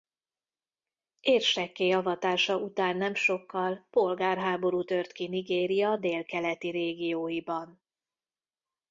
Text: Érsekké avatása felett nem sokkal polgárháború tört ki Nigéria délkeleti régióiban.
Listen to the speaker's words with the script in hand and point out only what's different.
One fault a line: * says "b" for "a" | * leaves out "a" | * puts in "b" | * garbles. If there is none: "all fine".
* says "után" for "felett"